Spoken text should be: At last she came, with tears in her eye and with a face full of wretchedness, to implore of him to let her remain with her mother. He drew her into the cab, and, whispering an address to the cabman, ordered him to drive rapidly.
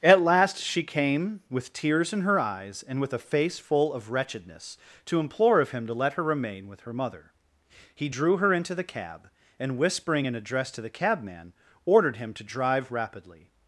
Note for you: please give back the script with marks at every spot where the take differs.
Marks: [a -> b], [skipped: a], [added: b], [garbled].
At last she came, with tears in her [eye -> eyes] and with a face full of wretchedness, to implore of him to let her remain with her mother. He drew her into the cab, and, whispering an address to the cabman, ordered him to drive rapidly.